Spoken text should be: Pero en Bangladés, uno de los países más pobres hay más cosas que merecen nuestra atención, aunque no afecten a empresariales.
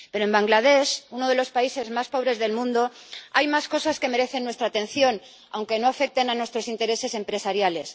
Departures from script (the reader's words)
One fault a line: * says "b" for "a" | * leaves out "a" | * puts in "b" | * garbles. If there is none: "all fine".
* puts in "del mundo"
* puts in "nuestros intereses"